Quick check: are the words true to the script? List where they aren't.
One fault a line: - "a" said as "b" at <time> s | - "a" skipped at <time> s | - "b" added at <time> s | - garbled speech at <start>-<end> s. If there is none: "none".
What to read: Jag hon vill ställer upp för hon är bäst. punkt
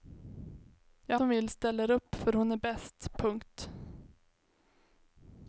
none